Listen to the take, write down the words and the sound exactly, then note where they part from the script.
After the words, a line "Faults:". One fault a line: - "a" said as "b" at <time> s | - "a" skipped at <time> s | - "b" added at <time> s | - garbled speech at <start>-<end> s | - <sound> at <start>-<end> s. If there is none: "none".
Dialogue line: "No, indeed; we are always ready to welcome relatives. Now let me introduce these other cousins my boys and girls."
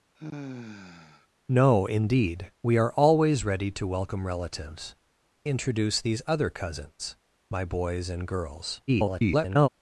"No, indeed; we are always ready to welcome relatives. Introduce these other cousins my boys and girls." [garbled]
Faults:
- sigh at 0.1-1.3 s
- "Now let me" skipped at 4.9 s
- garbled speech at 8.9-9.7 s